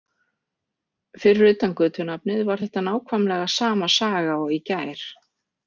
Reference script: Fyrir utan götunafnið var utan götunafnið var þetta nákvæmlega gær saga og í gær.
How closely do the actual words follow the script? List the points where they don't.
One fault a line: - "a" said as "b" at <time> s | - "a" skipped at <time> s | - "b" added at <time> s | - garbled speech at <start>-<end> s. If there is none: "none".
- "utan götunafnið var" skipped at 2.6 s
- "gær" said as "sama" at 3.6 s